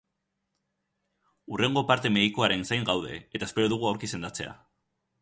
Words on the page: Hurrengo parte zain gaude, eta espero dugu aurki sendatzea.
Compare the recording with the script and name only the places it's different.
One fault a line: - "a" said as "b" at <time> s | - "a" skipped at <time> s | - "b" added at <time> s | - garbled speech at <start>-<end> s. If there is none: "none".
- "medikoaren" added at 2.1 s